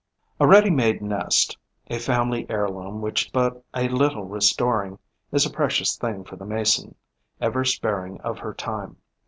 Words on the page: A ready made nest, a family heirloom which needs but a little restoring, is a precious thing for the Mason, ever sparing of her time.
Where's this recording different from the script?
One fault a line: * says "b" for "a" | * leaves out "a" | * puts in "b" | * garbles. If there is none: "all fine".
* leaves out "needs"